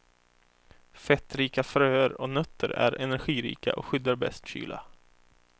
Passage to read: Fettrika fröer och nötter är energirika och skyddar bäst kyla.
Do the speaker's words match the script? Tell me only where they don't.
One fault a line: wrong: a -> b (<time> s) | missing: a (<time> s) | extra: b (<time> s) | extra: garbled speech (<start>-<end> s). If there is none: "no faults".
no faults